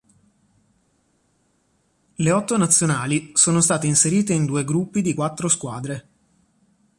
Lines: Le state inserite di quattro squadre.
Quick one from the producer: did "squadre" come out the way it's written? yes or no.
yes